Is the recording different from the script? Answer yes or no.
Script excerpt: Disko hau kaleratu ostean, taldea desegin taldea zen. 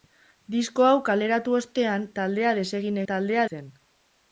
no